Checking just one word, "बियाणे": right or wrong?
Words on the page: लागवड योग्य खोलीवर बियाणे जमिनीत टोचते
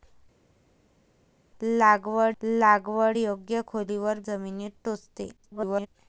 wrong